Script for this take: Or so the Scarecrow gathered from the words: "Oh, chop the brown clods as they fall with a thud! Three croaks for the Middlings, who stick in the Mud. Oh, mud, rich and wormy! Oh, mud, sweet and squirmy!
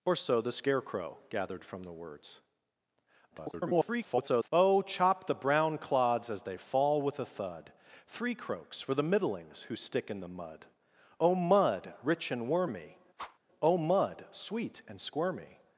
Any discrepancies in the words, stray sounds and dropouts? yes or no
yes